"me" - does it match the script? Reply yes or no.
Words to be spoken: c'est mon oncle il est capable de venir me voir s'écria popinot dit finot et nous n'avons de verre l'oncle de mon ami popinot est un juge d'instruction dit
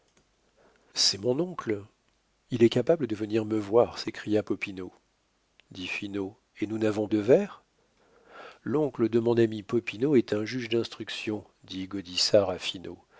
yes